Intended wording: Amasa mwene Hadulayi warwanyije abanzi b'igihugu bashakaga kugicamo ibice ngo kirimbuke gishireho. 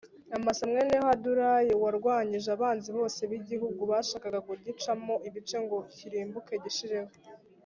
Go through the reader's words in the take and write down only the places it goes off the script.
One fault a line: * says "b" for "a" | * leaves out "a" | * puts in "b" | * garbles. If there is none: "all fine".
* puts in "bose"